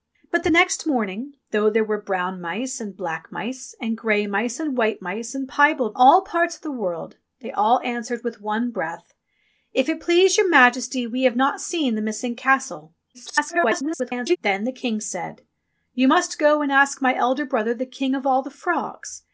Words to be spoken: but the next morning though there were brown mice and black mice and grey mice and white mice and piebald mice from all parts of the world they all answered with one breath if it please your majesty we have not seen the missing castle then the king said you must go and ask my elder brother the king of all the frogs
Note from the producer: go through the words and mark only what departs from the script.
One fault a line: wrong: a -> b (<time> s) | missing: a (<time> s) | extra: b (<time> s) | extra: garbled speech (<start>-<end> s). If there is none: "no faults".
missing: mice from (6.0 s)
extra: garbled speech (13.1-14.4 s)